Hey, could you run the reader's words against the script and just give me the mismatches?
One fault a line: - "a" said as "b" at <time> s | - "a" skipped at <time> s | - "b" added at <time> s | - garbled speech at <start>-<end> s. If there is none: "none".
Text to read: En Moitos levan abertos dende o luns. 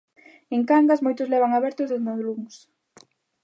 - "Cangas" added at 0.7 s